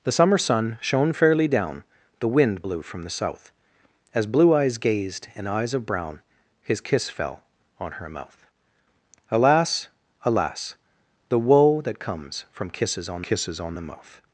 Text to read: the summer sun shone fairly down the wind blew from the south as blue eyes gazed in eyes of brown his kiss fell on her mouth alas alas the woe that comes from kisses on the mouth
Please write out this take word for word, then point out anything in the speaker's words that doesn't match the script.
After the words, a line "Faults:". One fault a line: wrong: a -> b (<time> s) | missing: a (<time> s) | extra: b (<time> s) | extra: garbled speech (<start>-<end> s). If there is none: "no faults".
the summer sun shone fairly down the wind blew from the south as blue eyes gazed in eyes of brown his kiss fell on her mouth alas alas the woe that comes from kisses on kisses on the mouth
Faults:
extra: kisses on (13.2 s)